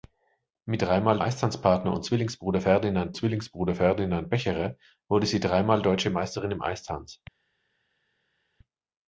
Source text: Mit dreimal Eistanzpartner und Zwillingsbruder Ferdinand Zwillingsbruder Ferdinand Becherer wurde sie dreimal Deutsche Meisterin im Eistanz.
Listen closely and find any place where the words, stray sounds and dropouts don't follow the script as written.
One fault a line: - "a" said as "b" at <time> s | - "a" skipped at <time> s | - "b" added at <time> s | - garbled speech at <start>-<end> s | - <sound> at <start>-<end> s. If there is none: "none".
none